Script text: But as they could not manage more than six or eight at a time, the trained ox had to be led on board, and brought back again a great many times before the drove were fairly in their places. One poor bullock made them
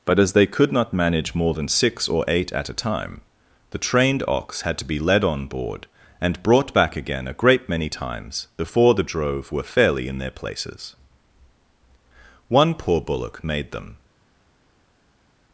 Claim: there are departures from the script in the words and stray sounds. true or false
false